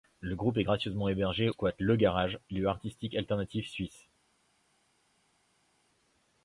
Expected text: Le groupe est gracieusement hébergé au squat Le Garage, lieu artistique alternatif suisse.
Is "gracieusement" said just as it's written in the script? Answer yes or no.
yes